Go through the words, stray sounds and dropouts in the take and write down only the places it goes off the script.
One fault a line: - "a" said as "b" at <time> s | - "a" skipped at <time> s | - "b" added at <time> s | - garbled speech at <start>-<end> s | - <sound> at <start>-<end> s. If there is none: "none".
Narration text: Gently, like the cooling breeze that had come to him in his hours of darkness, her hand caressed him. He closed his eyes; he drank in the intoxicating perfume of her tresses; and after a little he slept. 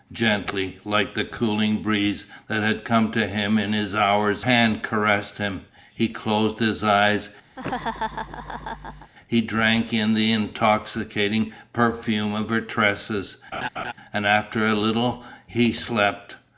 - "of darkness her" skipped at 4.4 s
- laugh at 7.6-9.1 s
- laugh at 13.5-13.9 s